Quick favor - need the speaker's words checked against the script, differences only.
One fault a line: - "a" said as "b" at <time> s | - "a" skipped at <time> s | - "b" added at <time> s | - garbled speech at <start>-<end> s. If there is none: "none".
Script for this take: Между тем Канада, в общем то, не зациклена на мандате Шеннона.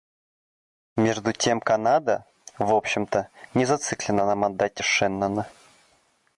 none